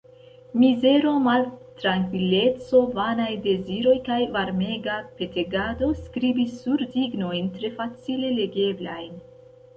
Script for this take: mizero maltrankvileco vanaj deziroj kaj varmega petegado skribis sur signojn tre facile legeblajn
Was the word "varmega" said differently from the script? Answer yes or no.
no